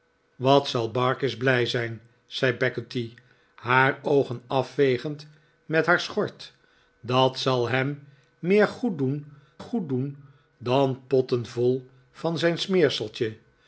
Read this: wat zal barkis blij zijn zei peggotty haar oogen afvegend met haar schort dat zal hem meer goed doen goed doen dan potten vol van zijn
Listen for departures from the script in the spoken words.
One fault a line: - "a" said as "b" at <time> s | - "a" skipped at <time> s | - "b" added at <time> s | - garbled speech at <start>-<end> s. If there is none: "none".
none